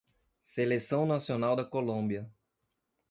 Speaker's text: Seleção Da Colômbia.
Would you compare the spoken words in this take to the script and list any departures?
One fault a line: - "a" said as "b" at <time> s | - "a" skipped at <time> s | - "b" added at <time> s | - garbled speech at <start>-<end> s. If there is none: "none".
- "Nacional" added at 1.1 s